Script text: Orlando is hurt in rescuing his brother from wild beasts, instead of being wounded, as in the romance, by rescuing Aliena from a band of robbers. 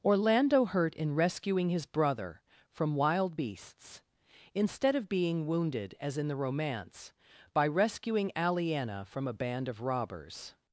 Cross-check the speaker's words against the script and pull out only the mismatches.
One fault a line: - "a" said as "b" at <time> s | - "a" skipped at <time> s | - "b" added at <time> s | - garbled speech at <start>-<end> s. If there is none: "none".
- "is" skipped at 0.7 s